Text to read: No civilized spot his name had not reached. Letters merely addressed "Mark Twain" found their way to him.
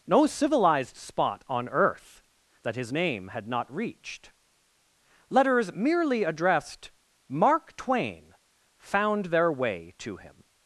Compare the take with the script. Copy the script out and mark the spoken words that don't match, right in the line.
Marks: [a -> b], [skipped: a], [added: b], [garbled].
No civilized spot [added: on earth that] his name had not reached. Letters merely addressed "Mark Twain" found their way to him.